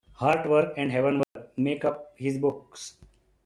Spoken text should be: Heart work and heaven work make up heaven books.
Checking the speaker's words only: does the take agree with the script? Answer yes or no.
no